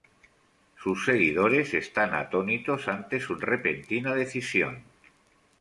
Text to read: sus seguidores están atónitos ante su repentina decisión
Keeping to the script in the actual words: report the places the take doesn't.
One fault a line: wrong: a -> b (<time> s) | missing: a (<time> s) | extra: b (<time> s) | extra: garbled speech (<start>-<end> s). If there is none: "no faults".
no faults